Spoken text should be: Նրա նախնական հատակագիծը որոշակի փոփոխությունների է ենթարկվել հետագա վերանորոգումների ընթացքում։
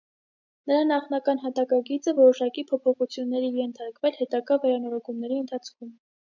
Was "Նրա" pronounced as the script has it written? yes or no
yes